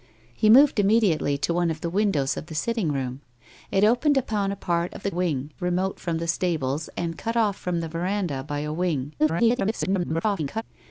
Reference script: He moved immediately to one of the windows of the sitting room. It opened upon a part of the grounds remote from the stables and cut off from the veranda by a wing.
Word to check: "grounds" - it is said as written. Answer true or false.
false